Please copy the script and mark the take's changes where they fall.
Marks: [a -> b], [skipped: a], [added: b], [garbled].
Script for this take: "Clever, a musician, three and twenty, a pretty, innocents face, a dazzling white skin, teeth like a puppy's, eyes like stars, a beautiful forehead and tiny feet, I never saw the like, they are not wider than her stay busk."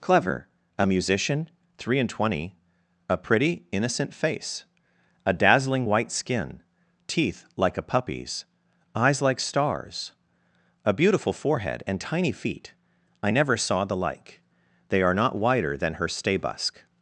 "Clever, a musician, three and twenty, a pretty, [innocents -> innocent] face, a dazzling white skin, teeth like a puppy's, eyes like stars, a beautiful forehead and tiny feet, I never saw the like, they are not wider than her stay busk."